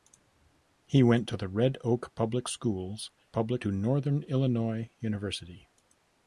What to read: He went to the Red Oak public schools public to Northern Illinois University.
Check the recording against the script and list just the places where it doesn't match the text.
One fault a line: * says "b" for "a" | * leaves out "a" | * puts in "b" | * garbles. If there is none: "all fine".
all fine